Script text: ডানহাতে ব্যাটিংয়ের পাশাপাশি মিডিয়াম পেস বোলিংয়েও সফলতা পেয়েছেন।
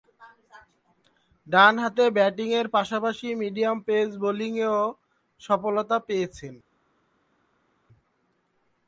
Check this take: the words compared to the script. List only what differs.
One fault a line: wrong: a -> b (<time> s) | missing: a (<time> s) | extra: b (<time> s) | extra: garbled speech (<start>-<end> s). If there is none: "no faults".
no faults